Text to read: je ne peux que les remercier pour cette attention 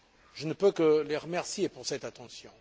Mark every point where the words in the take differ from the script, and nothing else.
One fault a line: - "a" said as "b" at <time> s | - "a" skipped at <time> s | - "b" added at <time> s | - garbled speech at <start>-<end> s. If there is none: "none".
none